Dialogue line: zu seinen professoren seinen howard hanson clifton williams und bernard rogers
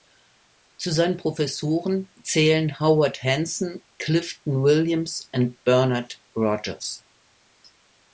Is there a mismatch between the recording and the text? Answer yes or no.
yes